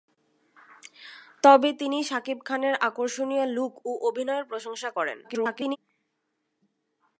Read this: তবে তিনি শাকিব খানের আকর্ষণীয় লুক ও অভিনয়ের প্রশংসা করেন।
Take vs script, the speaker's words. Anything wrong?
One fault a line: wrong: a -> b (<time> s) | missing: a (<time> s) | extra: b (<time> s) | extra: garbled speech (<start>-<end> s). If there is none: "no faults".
extra: garbled speech (5.2-5.8 s)